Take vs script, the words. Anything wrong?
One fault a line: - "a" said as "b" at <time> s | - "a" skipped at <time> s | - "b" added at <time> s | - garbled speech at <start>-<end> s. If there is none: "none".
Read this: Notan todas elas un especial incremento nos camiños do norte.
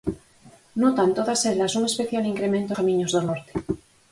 - "nos" skipped at 2.7 s